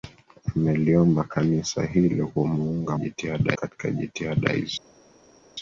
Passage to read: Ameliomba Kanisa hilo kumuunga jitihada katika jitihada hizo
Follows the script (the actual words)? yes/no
yes